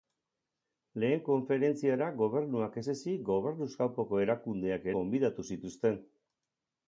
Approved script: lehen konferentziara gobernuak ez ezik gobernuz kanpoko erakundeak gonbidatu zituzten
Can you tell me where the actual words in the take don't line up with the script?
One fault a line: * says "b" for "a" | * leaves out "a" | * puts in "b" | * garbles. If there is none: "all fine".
all fine